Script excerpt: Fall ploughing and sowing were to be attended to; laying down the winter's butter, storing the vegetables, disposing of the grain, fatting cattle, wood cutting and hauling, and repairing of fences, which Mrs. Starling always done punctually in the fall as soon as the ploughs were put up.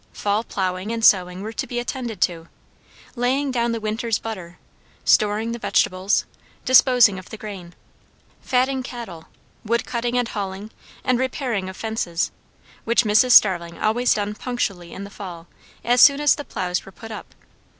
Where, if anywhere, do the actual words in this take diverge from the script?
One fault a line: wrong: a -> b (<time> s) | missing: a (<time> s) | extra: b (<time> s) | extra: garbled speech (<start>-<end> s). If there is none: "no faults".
no faults